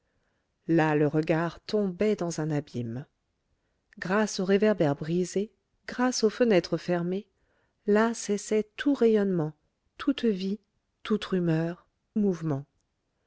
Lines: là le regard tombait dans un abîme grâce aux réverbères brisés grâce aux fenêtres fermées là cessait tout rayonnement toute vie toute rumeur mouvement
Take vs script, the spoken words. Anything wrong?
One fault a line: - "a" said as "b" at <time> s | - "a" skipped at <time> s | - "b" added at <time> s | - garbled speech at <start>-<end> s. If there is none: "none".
none